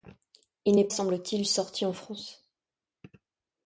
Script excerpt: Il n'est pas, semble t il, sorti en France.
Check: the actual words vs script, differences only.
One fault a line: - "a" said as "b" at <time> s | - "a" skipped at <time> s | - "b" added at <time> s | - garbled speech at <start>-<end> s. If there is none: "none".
- "pas" skipped at 0.9 s